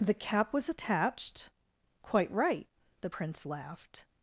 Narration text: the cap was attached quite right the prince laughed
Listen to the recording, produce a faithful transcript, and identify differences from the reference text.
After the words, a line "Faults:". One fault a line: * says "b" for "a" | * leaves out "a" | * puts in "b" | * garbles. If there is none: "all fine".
the cap was attached quite right the prince laughed
Faults:
all fine